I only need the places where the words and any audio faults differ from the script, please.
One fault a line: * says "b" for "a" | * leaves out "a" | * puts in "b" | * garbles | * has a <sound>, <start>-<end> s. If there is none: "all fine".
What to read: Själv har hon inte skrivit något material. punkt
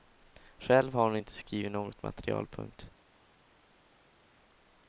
all fine